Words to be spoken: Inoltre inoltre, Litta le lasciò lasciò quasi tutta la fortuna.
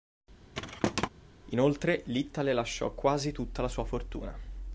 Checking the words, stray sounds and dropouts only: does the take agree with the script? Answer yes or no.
no